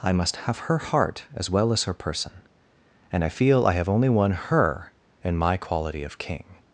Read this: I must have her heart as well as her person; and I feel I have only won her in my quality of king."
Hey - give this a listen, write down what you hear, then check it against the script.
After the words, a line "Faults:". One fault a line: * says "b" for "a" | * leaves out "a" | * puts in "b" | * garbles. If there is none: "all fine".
I must have her heart as well as her person; and I feel I have only won her in my quality of king."
Faults:
all fine